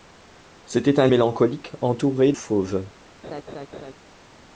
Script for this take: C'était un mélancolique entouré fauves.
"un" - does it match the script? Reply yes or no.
yes